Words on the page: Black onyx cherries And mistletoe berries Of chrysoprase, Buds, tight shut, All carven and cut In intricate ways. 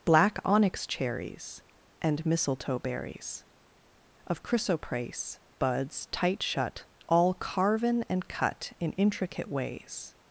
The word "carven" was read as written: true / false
true